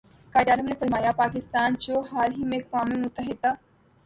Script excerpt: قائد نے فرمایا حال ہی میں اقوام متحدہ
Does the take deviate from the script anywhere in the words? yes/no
yes